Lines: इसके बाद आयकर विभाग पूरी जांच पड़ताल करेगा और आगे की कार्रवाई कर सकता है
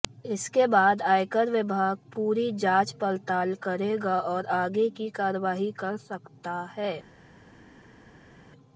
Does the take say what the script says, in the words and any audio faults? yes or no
yes